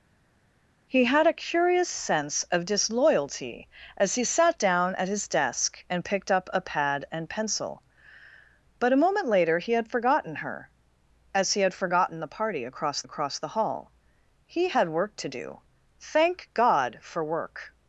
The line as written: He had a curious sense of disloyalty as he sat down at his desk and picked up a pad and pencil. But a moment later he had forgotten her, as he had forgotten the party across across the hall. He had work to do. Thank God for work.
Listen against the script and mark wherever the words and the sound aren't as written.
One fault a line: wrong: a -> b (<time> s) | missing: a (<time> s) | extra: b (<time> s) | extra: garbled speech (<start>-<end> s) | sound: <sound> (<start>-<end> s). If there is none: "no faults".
no faults